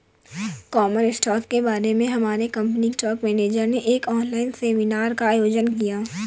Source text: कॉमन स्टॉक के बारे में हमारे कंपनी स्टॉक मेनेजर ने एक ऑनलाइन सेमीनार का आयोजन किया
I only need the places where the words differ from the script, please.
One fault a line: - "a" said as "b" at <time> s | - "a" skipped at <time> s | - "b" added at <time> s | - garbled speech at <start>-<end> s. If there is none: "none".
none